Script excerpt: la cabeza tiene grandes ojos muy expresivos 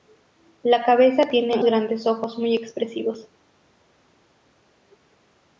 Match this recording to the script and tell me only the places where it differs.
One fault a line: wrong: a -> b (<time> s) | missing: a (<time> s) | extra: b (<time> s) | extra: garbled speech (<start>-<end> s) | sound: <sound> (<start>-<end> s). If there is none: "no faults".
no faults